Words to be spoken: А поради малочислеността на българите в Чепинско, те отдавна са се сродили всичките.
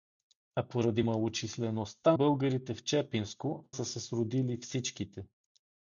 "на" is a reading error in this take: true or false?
true